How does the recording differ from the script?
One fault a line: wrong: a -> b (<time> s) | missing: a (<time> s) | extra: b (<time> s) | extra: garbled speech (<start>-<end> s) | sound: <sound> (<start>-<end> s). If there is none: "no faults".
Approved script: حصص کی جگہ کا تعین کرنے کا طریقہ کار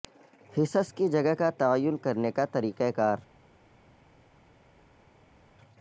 no faults